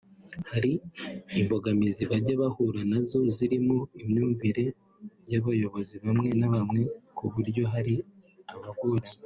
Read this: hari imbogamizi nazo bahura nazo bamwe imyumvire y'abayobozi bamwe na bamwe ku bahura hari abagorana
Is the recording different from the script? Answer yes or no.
yes